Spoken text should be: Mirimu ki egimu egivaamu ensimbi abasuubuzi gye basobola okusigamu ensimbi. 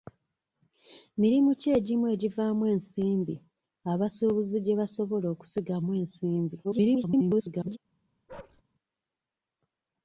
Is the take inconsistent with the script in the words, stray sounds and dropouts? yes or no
yes